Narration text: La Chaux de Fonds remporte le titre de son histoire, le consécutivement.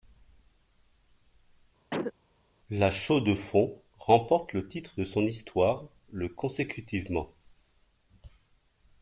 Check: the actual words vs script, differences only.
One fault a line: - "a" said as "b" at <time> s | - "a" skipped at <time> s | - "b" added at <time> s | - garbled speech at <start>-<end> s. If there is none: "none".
none